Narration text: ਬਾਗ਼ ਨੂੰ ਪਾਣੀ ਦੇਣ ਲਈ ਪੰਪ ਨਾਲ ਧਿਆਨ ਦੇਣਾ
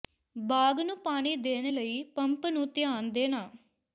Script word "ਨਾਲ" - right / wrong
wrong